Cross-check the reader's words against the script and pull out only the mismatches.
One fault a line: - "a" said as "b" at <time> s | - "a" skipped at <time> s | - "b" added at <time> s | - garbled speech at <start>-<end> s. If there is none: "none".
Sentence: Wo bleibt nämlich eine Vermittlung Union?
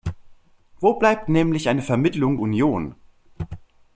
none